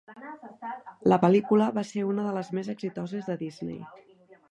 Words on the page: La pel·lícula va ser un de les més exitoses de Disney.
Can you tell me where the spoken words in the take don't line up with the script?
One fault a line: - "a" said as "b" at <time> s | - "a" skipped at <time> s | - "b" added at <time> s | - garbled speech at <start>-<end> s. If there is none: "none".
- "un" said as "una" at 2.1 s